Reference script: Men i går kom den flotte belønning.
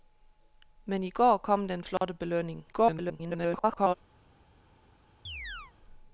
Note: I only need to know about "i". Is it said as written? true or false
true